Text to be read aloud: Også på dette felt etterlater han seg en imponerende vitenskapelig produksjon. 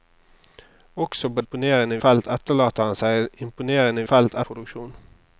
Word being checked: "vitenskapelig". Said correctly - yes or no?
no